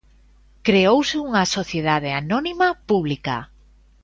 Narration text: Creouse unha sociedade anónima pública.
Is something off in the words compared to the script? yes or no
no